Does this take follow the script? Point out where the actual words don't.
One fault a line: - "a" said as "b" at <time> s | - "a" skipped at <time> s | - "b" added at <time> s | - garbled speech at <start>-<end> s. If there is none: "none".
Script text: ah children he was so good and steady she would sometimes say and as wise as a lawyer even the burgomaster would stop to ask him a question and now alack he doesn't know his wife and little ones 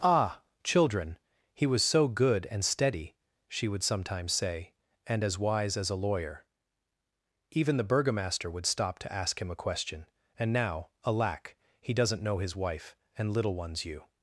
- "you" added at 13.8 s